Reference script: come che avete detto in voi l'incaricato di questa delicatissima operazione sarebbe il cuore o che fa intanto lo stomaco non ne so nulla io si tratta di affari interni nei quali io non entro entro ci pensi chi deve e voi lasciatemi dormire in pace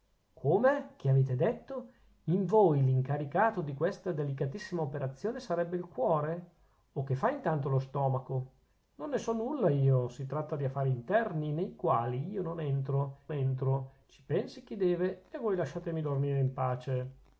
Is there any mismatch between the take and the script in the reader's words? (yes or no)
no